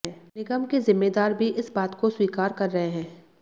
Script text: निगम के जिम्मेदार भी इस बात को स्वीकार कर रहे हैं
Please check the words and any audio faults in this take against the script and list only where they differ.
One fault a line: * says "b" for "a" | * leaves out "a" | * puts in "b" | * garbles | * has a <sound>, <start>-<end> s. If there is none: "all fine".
all fine